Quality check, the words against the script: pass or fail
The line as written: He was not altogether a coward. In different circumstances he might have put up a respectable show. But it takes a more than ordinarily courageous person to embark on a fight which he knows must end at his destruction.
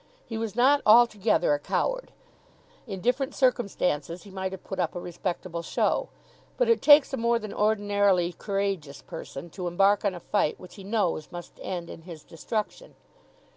fail